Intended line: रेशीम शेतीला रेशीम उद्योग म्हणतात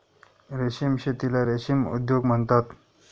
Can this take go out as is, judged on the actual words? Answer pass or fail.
pass